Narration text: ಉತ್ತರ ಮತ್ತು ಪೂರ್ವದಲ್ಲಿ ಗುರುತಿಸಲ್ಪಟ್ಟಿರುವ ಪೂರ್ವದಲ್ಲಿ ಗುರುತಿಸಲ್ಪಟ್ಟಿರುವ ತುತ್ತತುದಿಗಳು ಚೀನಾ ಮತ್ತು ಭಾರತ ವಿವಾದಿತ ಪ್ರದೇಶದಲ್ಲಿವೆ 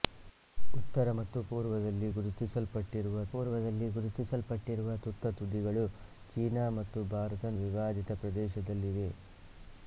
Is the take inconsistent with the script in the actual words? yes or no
no